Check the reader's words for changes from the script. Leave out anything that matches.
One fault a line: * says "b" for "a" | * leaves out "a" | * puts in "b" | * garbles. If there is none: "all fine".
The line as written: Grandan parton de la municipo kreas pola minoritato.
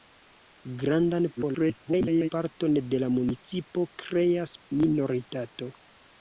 * garbles
* leaves out "pola"